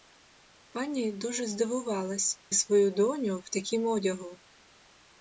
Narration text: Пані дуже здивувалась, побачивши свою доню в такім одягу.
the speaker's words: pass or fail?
fail